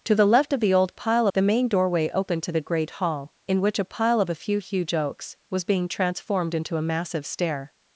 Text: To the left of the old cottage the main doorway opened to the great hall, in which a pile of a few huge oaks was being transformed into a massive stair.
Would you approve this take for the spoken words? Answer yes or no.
no